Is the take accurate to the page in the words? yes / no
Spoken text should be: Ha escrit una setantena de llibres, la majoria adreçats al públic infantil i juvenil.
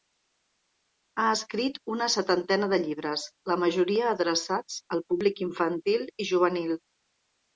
yes